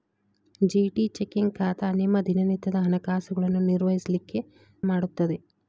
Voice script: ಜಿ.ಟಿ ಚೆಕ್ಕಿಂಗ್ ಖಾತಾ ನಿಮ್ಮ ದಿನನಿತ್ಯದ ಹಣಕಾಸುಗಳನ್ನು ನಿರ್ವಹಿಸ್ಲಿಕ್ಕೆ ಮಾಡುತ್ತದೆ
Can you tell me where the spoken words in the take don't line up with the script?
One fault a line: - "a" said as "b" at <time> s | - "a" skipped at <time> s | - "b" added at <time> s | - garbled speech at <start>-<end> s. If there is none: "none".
none